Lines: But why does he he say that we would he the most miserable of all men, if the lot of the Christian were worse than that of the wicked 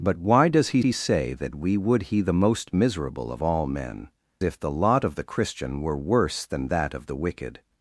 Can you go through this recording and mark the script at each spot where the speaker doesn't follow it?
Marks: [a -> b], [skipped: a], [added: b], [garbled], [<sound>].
But why does he he say that we would he the most miserable of all men, if the lot of the Christian were worse than that of the wicked